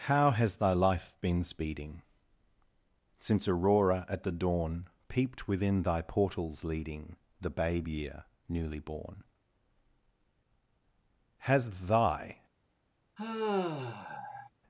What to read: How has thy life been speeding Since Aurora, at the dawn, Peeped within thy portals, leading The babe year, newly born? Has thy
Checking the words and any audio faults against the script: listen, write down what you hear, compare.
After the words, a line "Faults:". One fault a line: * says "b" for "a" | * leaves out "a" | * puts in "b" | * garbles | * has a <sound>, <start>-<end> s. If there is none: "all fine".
How has thy life been speeding Since Aurora, at the dawn, Peeped within thy portals, leading The babe year, newly born? Has thy
Faults:
* has a sigh, 13.2-14.5 s